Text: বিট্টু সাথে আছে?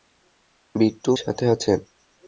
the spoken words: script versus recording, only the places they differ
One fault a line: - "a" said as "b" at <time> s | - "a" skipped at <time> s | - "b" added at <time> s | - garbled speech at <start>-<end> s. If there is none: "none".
none